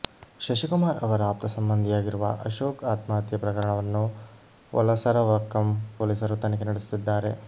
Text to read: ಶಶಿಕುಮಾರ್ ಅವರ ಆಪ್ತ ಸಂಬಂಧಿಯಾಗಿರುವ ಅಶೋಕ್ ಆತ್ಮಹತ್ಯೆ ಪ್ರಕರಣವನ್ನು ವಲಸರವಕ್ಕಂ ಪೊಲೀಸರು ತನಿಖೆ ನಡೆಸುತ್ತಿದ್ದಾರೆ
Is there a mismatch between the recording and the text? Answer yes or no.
no